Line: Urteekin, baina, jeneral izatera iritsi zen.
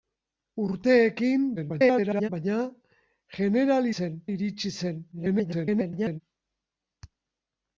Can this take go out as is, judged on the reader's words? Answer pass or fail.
fail